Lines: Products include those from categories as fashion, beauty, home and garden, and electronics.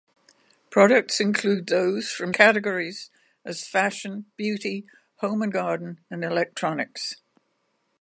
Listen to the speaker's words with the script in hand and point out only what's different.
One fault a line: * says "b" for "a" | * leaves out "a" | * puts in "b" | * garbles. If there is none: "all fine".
all fine